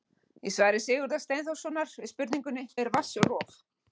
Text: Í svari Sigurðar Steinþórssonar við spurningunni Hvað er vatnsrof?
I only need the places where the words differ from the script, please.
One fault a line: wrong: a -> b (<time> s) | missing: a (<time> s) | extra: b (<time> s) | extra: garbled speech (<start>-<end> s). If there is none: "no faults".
missing: Hvað (2.7 s)